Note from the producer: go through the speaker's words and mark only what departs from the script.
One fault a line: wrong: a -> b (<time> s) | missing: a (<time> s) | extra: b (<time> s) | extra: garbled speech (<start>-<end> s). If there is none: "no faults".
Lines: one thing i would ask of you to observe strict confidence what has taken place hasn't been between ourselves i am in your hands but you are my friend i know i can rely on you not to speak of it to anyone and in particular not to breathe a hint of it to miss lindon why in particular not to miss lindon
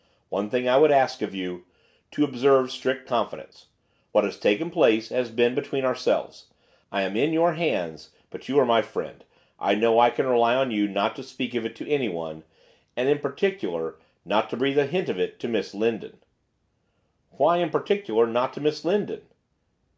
wrong: hasn't -> has (5.1 s)